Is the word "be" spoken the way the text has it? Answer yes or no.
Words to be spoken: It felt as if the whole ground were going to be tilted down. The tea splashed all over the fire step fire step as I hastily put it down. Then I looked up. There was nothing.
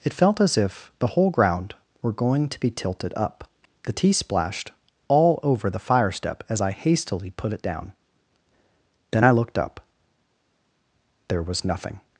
yes